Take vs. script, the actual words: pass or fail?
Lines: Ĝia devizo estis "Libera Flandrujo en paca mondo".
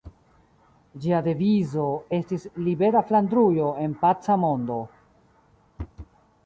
pass